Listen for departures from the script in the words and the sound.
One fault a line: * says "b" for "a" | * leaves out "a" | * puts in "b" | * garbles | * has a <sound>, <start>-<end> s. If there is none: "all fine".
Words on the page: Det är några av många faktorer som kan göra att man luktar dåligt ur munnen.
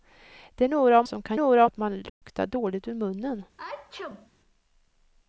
* leaves out "många faktorer"
* says "några" for "göra"
* has a dropout, 2.1-2.2 s
* has a sneeze, 3.6-4.3 s